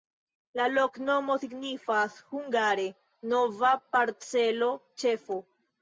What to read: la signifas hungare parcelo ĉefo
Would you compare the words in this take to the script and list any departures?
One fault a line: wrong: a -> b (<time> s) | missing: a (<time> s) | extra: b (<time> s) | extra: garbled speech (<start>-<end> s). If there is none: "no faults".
extra: loknomo (0.7 s)
extra: nova (3.4 s)